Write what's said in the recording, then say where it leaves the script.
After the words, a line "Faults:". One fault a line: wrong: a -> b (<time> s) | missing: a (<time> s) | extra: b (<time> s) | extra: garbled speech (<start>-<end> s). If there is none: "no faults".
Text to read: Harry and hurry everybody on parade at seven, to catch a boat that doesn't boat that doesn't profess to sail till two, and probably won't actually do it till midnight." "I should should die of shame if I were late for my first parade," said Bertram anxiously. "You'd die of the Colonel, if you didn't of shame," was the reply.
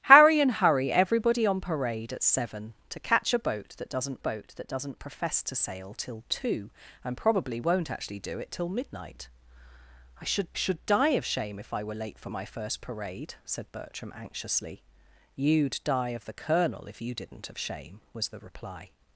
Harry and hurry everybody on parade at seven, to catch a boat that doesn't boat that doesn't profess to sail till two, and probably won't actually do it till midnight." "I should should die of shame if I were late for my first parade," said Bertram anxiously. "You'd die of the Colonel, if you didn't of shame," was the reply.
Faults:
no faults